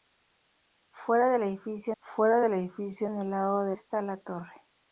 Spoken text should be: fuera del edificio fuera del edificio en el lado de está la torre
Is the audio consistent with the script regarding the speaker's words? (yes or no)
yes